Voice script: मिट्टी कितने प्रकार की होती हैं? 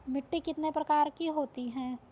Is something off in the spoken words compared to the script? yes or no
no